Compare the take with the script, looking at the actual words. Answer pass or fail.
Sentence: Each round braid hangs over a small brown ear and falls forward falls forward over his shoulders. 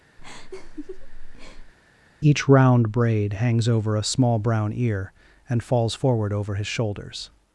fail